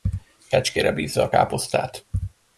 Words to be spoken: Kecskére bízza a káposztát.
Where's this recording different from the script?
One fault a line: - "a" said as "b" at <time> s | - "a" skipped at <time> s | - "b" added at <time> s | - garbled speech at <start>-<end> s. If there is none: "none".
none